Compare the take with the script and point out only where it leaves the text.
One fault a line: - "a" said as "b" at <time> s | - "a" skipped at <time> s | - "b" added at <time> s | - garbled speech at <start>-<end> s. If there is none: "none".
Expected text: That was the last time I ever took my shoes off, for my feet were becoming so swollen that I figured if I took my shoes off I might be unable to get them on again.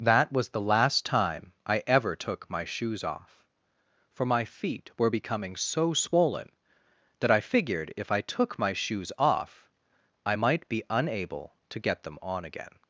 none